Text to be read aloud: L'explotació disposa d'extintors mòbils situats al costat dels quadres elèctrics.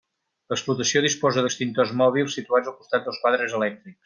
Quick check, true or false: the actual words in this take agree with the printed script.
true